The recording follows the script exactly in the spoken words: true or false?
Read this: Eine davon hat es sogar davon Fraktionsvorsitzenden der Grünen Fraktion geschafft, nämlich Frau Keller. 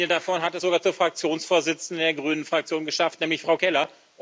false